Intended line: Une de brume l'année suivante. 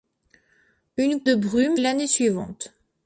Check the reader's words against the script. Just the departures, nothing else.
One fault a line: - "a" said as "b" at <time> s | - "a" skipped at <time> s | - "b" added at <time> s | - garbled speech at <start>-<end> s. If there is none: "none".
none